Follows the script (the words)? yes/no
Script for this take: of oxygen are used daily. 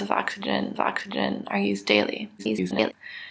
no